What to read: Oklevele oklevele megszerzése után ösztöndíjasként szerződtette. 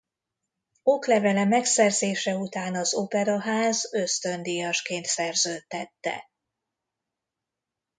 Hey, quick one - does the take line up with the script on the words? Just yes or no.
no